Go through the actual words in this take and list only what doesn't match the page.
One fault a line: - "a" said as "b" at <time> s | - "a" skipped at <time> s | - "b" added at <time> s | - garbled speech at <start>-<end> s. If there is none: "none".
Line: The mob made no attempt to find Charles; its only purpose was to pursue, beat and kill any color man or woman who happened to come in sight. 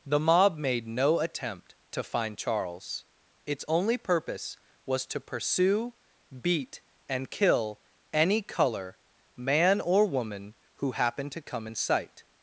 none